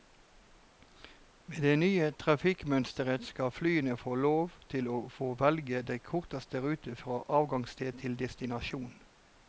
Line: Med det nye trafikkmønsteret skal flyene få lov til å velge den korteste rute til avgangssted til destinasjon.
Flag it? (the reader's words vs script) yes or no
yes